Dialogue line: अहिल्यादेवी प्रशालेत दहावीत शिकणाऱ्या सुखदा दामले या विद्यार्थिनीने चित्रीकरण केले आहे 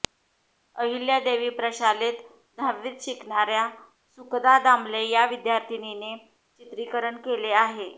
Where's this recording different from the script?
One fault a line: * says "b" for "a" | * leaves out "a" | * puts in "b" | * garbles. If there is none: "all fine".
all fine